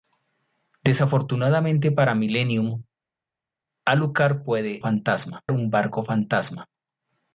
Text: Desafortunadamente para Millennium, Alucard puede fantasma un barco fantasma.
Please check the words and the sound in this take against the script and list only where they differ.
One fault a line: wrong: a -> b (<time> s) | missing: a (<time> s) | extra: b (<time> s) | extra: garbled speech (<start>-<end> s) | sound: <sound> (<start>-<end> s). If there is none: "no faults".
no faults